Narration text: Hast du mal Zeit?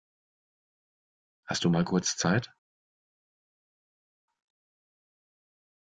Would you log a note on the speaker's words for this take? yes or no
yes